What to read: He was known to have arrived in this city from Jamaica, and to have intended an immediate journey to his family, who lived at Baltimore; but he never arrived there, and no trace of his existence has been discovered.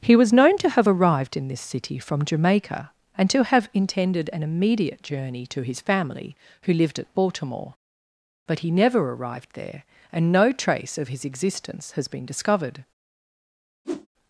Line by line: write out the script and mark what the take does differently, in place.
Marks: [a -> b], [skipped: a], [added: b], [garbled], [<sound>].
He was known to have arrived in this city from Jamaica, and to have intended an immediate journey to his family, who lived at Baltimore; but he never arrived there, and no trace of his existence has been discovered. [whoosh]